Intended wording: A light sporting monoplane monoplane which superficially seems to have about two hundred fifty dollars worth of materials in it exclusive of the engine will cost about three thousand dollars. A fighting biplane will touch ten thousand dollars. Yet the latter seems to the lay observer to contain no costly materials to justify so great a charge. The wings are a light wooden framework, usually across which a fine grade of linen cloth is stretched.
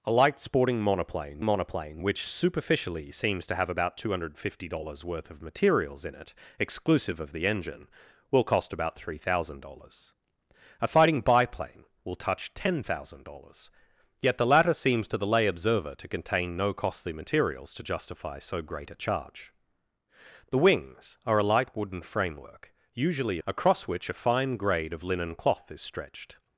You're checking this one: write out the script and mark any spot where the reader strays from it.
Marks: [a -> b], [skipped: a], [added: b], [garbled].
A light sporting monoplane monoplane which superficially seems to have about two hundred fifty dollars worth of materials in it exclusive of the engine will cost about three thousand dollars. A fighting biplane will touch ten thousand dollars. Yet the latter seems to the lay observer to contain no costly materials to justify so great a charge. The wings are a light wooden framework, usually across which a fine grade of linen cloth is stretched.